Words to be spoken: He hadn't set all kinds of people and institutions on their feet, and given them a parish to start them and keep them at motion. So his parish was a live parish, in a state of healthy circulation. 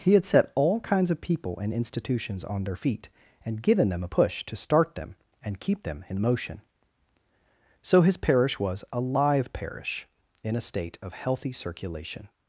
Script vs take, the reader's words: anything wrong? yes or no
yes